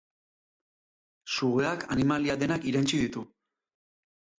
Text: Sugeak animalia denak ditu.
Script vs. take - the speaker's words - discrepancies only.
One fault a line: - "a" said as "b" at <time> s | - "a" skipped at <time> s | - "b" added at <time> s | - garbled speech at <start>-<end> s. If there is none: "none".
- "irentsi" added at 2.7 s